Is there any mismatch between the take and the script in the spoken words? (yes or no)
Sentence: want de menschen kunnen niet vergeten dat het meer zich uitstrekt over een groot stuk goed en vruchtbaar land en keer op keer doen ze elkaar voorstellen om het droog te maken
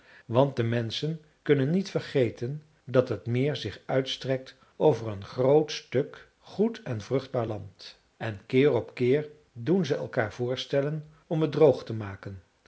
no